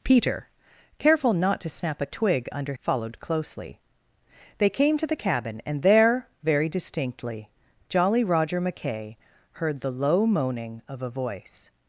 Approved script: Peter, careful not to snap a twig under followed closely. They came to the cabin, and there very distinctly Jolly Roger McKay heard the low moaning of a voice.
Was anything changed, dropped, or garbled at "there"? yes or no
no